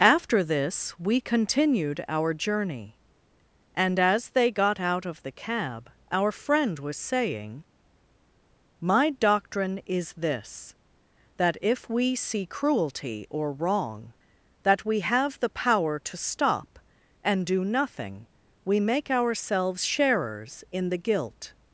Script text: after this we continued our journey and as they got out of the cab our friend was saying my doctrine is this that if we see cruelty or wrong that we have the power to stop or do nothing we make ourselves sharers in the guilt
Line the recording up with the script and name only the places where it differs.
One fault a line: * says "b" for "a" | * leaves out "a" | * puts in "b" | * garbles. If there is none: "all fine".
* says "and" for "or"